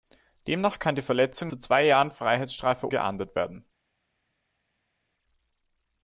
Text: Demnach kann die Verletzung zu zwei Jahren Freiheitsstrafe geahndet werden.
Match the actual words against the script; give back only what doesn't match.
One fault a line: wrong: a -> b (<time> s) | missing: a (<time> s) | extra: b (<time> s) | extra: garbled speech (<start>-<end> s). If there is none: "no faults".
no faults